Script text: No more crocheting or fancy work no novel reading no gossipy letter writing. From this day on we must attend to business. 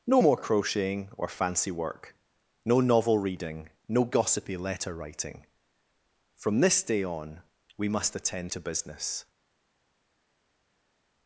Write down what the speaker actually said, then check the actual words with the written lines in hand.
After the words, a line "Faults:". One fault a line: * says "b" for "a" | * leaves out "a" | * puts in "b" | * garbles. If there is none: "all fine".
No more crocheting or fancy work no novel reading no gossipy letter writing. From this day on we must attend to business.
Faults:
all fine